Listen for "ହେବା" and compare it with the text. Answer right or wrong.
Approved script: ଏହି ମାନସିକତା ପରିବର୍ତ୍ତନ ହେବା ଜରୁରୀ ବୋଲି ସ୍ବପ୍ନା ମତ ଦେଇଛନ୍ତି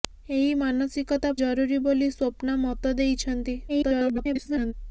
wrong